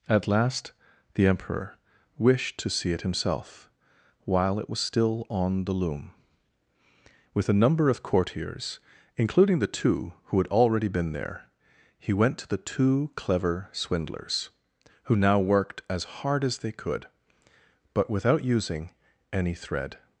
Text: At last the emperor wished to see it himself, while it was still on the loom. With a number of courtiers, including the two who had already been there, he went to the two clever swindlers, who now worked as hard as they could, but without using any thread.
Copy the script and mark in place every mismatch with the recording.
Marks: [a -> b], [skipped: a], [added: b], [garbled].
At last the emperor wished to see it himself, while it was still on the loom. With a number of courtiers, including the two who had already been there, he went to the two clever swindlers, who now worked as hard as they could, but without using any thread.